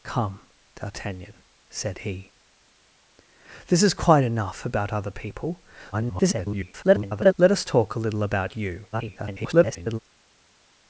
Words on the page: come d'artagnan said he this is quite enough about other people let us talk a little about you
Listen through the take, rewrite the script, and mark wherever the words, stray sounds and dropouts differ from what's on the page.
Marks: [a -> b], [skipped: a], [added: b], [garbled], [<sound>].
come d'artagnan said he this is quite enough about other people [garbled] let us talk a little about you [garbled]